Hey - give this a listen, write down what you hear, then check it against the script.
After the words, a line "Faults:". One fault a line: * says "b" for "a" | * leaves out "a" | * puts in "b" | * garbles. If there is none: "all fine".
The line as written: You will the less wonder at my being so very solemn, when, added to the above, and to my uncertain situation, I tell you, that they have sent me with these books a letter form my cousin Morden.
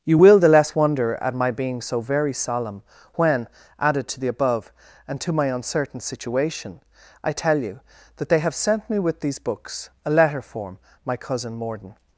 You will the less wonder at my being so very solemn, when, added to the above, and to my uncertain situation, I tell you, that they have sent me with these books a letter form my cousin Morden.
Faults:
all fine